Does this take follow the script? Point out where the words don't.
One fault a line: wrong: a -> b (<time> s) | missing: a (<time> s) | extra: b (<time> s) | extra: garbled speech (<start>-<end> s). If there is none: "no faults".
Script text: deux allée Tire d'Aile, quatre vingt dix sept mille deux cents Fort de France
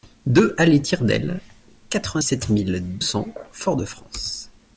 missing: dix (2.2 s)
missing: deux (3.0 s)